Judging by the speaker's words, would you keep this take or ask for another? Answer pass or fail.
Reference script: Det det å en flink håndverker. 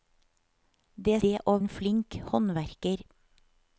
pass